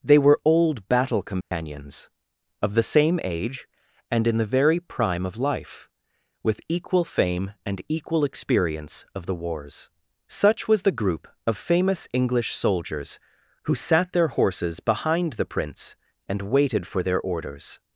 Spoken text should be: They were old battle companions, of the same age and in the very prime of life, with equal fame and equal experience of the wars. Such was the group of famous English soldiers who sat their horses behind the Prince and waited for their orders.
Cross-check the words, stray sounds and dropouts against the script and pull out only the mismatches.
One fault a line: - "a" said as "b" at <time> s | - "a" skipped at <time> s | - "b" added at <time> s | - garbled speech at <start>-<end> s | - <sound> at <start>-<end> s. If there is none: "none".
- dropout at 1.4-1.5 s